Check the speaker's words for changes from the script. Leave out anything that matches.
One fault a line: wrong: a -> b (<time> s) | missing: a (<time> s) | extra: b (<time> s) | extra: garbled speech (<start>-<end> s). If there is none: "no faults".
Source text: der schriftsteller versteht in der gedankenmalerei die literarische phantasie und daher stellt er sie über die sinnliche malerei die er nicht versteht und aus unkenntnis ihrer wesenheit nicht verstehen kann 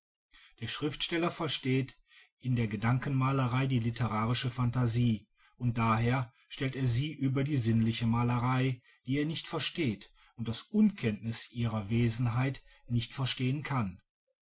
no faults